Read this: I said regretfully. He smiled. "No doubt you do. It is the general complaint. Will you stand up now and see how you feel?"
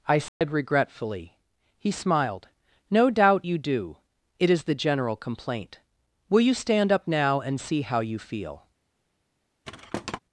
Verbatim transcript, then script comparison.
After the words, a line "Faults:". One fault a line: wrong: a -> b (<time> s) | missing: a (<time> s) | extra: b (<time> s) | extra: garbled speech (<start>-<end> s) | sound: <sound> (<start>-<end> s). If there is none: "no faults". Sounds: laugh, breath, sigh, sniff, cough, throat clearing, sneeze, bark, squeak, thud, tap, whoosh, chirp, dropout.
I said regretfully. He smiled. "No doubt you do. It is the general complaint. Will you stand up now and see how you feel?"
Faults:
sound: dropout (0.3-0.4 s)
sound: thud (9.6-10.2 s)